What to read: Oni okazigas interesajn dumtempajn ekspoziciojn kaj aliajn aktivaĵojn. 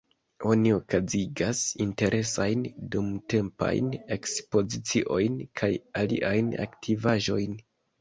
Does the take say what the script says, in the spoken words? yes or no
yes